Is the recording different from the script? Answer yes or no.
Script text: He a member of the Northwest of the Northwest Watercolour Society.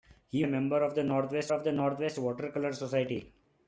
no